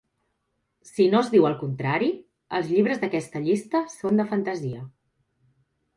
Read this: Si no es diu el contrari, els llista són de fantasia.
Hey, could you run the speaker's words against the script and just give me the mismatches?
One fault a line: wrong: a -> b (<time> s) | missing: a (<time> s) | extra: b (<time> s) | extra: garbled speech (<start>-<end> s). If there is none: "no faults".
extra: llibres d'aquesta (2.7 s)